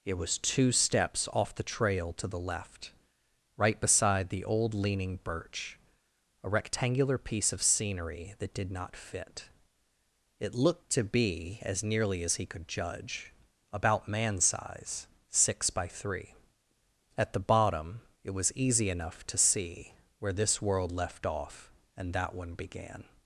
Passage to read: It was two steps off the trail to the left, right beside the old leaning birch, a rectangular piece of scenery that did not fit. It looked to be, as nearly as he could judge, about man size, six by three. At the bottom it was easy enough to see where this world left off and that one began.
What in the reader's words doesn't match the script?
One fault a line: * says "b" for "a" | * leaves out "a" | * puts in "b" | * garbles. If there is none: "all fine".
all fine